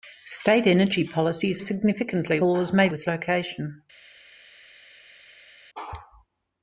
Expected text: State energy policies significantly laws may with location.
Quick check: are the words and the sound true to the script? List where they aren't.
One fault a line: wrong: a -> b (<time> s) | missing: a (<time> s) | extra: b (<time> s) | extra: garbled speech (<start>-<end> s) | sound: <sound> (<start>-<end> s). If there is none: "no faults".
no faults